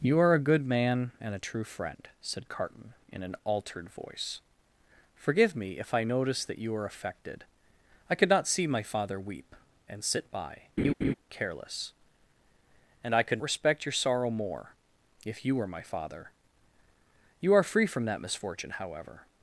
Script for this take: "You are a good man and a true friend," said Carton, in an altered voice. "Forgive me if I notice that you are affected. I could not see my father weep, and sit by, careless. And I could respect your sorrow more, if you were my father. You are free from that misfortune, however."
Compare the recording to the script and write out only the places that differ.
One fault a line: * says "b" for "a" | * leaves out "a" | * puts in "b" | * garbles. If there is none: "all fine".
all fine